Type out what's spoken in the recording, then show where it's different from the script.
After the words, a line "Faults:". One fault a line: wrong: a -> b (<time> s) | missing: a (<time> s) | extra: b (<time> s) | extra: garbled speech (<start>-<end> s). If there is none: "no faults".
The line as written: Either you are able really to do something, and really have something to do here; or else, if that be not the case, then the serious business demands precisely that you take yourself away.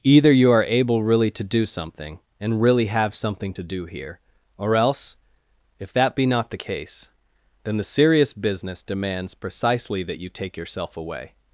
Either you are able really to do something, and really have something to do here; or else, if that be not the case, then the serious business demands precisely that you take yourself away.
Faults:
no faults